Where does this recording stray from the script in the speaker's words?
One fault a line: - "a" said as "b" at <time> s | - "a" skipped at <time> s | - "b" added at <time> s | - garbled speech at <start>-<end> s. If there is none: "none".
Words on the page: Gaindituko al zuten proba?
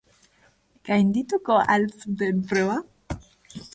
none